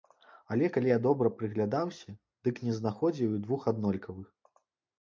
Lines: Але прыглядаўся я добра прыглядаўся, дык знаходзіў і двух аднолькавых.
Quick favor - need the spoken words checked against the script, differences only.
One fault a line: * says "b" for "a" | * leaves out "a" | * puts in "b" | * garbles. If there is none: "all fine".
* says "калі" for "прыглядаўся"
* puts in "не"